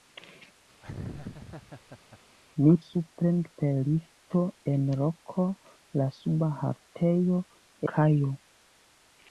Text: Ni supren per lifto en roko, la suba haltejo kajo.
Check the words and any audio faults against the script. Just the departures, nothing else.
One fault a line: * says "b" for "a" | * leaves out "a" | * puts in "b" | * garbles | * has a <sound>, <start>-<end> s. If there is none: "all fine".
* has a laugh, 0.8-2.2 s